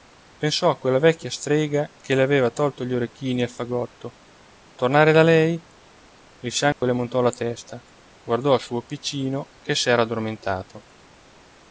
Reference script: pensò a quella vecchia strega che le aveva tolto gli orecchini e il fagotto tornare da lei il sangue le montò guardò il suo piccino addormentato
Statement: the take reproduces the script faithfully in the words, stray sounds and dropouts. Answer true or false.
false